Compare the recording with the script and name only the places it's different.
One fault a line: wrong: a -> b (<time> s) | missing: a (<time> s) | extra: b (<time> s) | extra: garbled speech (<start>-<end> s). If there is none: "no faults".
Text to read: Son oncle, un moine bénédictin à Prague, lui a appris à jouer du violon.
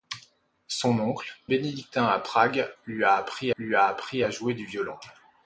missing: un moine (1.3 s)
extra: lui a appris (3.6 s)